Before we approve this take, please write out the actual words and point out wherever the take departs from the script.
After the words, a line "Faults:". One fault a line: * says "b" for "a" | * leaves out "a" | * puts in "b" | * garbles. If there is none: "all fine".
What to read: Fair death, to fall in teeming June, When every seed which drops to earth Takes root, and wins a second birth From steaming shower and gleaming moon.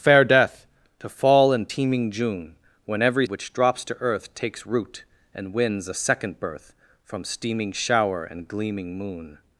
Fair death, to fall in teeming June, When every which drops to earth Takes root, and wins a second birth From steaming shower and gleaming moon.
Faults:
* leaves out "seed"